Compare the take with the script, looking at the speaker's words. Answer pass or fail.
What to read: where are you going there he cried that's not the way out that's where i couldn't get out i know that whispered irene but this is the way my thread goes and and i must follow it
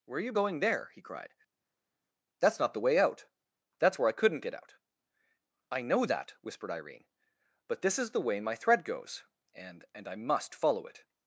pass